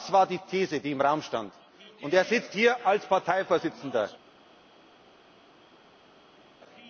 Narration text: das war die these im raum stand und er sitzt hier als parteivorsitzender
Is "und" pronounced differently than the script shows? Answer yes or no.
no